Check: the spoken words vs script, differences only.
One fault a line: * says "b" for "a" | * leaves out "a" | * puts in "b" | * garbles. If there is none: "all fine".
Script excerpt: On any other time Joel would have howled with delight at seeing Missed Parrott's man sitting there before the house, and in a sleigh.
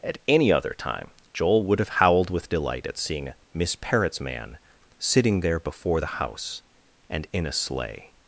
* says "At" for "On"
* says "Miss" for "Missed"